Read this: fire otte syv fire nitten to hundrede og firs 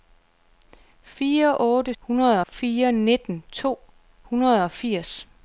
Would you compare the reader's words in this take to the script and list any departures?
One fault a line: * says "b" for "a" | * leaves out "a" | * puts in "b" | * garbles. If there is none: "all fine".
* says "hundrede" for "syv"